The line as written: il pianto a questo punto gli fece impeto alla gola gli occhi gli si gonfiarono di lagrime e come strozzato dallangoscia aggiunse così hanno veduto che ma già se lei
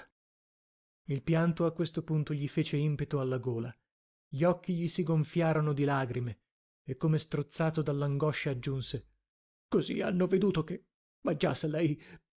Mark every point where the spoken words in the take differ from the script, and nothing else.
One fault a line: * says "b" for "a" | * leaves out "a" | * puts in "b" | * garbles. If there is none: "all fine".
all fine